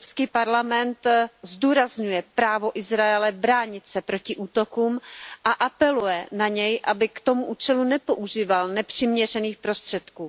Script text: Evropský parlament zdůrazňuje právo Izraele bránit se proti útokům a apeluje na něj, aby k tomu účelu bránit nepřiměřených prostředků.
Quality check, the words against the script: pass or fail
fail